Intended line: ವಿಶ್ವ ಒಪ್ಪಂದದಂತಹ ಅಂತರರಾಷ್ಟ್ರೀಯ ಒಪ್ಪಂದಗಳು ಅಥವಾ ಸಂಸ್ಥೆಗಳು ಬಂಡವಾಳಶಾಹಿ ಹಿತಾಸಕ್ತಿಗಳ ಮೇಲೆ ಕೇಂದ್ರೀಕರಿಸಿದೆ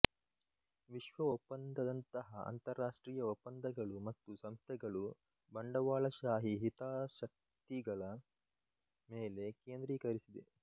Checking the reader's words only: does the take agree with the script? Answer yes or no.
no